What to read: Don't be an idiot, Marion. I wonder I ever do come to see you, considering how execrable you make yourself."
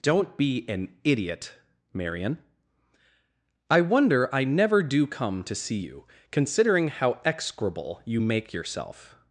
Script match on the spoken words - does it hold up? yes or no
no